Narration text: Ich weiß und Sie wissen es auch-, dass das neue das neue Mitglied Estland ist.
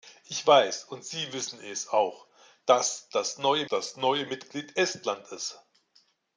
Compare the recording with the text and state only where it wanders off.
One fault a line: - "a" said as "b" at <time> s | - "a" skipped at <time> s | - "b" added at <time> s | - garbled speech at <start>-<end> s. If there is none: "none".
none